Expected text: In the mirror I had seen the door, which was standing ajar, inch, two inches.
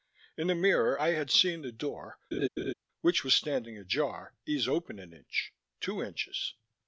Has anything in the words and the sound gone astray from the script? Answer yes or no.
yes